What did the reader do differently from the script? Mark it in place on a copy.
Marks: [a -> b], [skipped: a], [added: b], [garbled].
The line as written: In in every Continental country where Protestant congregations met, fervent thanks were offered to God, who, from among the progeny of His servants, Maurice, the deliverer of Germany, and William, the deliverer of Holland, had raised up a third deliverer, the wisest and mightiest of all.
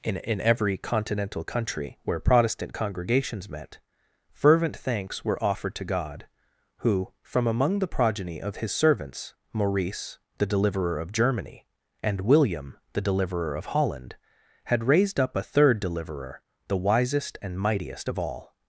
In in every Continental country where Protestant congregations met, fervent thanks were offered to God, who, from among the progeny of His servants, Maurice, the deliverer of Germany, and William, the deliverer of Holland, had raised up a third deliverer, the wisest and mightiest of all.